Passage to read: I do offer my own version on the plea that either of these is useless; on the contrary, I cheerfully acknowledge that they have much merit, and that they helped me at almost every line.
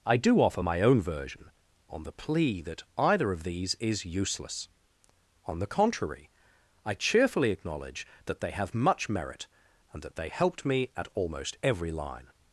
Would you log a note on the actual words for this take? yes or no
no